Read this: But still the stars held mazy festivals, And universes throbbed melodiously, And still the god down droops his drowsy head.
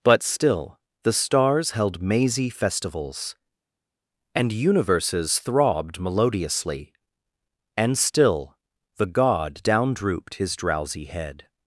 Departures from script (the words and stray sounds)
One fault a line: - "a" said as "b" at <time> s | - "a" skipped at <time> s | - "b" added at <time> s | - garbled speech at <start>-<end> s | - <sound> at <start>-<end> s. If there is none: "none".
- "droops" said as "drooped" at 9.9 s